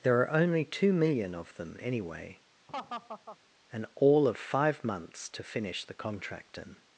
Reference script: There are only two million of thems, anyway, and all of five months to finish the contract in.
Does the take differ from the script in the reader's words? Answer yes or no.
yes